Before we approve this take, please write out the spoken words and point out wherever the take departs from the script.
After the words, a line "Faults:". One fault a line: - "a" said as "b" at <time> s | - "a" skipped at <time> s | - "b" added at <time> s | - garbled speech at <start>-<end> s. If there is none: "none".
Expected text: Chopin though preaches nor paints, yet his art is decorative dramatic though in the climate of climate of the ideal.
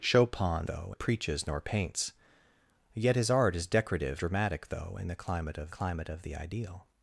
Chopin though preaches nor paints, yet his art is decorative dramatic though in the climate of climate of the ideal.
Faults:
none